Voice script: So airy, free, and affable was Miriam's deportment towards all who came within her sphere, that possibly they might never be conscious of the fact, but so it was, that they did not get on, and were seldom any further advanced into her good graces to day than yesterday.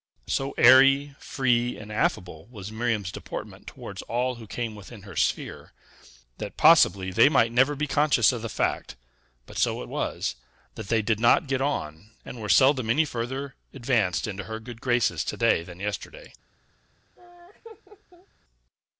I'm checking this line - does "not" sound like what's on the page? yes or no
yes